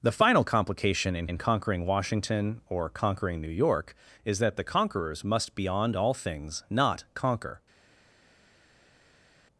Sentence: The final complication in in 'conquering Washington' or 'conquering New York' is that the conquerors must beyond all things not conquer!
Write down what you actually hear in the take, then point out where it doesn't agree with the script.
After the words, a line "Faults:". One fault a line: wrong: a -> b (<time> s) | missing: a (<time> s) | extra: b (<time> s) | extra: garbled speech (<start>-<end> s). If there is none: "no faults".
The final complication in in 'conquering Washington' or 'conquering New York' is that the conquerors must beyond all things not conquer!
Faults:
no faults